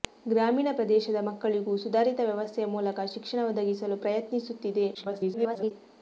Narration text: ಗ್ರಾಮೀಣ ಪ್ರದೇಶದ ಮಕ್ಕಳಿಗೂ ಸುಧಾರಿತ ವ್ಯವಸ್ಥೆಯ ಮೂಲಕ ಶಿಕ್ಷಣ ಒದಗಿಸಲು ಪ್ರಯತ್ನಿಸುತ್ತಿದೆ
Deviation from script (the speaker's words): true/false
true